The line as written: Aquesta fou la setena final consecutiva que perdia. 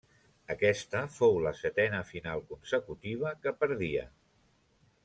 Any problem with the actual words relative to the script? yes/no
no